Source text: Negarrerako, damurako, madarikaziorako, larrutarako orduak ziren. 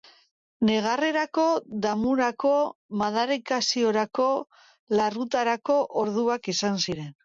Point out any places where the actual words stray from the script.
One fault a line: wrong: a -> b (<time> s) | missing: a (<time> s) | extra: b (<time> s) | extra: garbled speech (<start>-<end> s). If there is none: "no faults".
extra: izan (6.6 s)